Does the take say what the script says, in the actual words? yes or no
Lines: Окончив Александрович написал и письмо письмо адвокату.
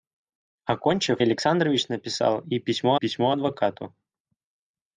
yes